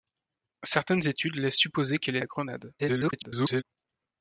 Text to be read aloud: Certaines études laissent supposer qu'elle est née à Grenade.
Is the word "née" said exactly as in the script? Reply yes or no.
no